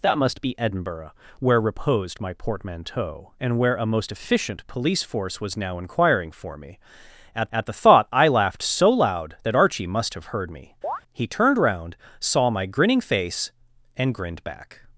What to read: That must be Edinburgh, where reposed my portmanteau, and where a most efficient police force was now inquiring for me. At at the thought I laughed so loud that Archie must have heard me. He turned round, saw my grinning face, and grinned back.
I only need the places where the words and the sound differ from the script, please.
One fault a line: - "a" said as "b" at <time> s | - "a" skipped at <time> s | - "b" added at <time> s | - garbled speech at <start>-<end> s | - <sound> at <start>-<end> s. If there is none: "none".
- chirp at 10.8-11.0 s